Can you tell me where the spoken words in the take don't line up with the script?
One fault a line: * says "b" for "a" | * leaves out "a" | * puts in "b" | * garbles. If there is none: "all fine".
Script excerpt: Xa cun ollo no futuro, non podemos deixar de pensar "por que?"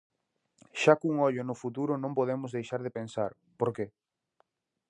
all fine